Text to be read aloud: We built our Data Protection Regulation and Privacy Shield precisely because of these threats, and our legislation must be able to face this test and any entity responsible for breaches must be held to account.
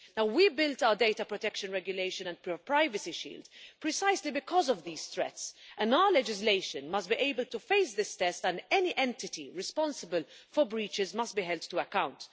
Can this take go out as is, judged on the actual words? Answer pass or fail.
pass